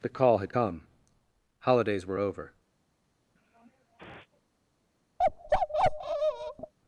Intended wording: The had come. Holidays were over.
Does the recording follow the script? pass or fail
fail